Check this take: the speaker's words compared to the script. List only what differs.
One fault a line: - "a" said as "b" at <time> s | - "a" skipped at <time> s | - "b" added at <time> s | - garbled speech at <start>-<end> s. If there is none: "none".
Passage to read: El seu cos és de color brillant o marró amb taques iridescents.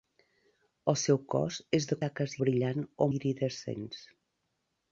- "color" said as "taques" at 2.1 s
- "marró amb taques" skipped at 3.1 s